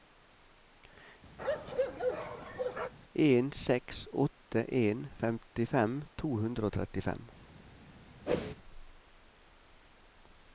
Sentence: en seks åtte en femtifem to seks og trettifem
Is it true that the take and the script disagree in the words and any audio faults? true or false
true